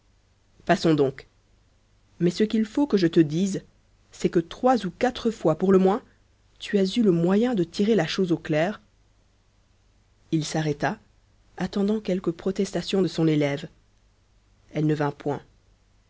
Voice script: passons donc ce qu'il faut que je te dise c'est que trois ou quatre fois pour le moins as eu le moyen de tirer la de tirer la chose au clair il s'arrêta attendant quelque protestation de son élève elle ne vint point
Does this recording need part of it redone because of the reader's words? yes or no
yes